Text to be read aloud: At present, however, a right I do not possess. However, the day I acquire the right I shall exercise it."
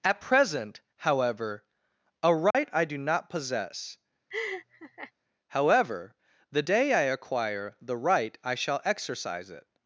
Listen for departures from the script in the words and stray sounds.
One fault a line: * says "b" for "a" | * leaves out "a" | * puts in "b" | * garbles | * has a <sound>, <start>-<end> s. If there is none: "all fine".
* has a dropout, 2.5-2.5 s
* has a laugh, 4.3-5.1 s